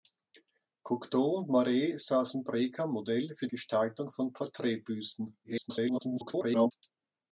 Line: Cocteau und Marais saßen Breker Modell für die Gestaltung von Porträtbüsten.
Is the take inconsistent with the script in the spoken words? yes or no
yes